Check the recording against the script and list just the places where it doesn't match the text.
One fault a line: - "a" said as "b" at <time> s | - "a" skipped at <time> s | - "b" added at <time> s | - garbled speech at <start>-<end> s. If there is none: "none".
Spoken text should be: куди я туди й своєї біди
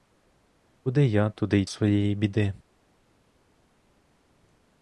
none